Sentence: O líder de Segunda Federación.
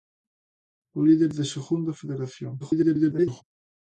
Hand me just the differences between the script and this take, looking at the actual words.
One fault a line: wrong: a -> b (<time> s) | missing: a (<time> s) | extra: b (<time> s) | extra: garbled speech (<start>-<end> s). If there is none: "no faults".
extra: garbled speech (2.6-3.4 s)